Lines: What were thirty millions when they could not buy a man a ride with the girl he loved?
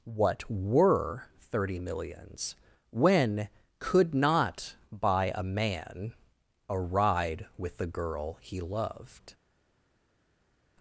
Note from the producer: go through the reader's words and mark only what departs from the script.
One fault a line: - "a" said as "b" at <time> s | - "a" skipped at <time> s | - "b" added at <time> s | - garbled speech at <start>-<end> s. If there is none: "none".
- "they" skipped at 3.5 s